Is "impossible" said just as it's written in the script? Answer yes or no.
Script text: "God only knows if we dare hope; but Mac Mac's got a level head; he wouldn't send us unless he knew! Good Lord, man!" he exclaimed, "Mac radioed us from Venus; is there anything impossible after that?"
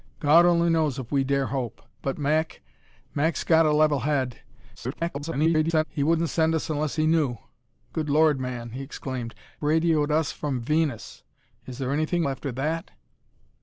no